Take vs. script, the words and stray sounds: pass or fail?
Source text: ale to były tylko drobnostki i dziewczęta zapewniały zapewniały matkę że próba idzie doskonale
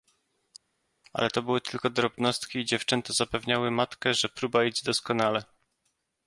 fail